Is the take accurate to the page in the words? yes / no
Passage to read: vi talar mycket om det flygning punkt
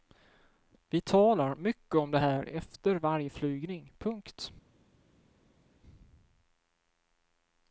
no